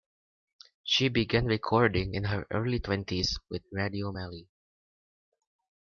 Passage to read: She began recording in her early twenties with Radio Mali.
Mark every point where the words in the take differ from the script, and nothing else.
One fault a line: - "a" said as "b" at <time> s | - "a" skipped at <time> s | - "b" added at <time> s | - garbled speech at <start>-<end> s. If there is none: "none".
none